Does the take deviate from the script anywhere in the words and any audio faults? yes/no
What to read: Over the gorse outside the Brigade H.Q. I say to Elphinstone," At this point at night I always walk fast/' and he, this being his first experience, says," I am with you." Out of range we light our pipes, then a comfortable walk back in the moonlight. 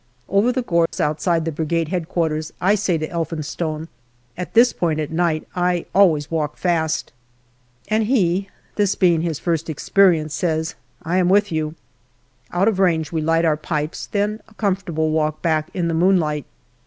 yes